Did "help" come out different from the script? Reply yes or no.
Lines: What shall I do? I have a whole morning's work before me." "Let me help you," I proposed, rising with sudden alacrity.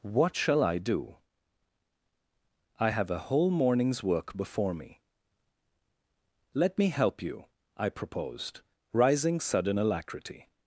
no